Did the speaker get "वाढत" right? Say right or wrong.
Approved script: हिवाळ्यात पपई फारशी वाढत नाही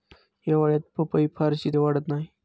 right